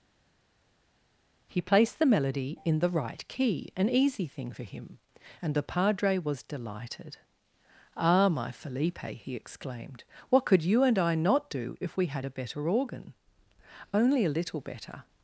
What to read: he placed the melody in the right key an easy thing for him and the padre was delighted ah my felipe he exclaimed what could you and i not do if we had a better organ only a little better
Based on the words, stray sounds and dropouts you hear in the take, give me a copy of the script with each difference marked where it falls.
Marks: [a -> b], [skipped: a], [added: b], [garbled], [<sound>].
he placed the melody in the right key an easy thing for him and the padre was delighted ah my felipe he exclaimed what could you and i not do if we had a better organ only a little better